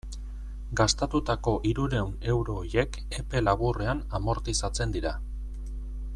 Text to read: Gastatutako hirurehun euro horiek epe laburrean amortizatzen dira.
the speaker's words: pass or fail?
pass